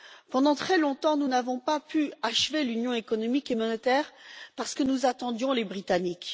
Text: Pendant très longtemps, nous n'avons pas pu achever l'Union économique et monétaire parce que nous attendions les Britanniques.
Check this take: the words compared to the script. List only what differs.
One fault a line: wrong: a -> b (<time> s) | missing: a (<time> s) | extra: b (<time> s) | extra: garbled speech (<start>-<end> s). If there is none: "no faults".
no faults